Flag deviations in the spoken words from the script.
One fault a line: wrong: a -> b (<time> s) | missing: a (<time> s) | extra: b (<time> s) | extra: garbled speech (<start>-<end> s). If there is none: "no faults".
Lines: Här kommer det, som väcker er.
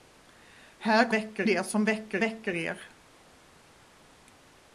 wrong: kommer -> väcker (1.1 s)
extra: väcker (2.2 s)